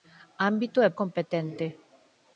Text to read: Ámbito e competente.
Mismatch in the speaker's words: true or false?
false